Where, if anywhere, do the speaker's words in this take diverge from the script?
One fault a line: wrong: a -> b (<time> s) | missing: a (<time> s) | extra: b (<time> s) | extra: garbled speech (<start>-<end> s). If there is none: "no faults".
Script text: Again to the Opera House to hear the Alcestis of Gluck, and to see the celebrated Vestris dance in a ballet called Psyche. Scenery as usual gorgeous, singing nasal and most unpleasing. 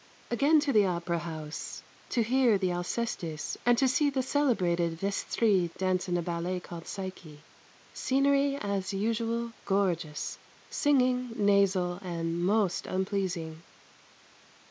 missing: of Gluck (3.5 s)